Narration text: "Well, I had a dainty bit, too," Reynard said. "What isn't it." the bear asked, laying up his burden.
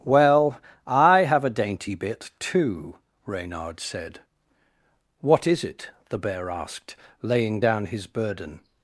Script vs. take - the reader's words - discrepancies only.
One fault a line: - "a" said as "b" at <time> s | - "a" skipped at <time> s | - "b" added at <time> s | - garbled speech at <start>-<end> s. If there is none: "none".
- "had" said as "have" at 1.2 s
- "isn't" said as "is" at 5.5 s
- "up" said as "down" at 7.6 s